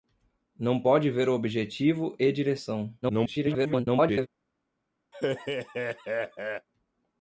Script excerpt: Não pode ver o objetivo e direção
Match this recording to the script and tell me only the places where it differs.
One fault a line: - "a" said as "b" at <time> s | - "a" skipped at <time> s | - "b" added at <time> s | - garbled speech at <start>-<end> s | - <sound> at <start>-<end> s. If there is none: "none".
- garbled speech at 3.0-4.3 s
- laugh at 5.1-6.7 s